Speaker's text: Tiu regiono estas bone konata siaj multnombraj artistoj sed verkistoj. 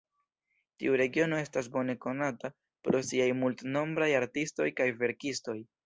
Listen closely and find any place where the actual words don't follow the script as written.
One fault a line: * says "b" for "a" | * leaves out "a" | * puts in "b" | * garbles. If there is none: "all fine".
* puts in "pro"
* says "kaj" for "sed"